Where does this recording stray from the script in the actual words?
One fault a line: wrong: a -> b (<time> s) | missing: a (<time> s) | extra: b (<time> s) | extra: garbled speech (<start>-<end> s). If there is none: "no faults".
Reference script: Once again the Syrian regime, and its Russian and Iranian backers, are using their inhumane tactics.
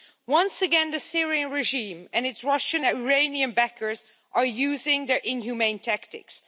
missing: and (2.9 s)